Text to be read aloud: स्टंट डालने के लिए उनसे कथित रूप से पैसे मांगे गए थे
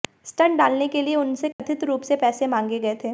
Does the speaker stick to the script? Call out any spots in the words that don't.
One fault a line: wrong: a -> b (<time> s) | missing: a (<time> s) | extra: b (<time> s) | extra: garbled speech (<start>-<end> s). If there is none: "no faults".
no faults